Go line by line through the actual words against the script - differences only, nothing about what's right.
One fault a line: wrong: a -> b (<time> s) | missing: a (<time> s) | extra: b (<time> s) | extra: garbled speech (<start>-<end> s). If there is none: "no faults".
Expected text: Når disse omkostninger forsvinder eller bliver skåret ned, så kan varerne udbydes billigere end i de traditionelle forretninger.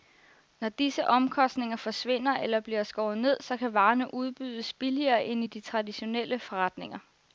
no faults